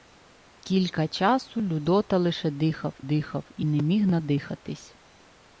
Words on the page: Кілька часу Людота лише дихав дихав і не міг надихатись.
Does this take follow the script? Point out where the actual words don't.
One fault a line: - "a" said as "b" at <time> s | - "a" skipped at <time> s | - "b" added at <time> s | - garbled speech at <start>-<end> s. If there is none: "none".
none